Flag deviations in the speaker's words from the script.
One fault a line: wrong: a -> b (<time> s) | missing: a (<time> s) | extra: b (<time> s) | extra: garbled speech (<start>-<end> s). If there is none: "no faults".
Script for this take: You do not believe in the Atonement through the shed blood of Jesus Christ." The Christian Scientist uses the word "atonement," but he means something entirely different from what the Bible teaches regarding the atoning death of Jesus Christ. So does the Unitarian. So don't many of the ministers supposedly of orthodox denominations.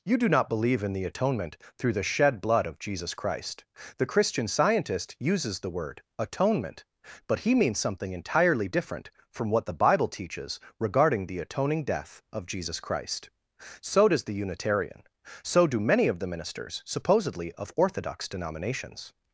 wrong: don't -> do (15.7 s)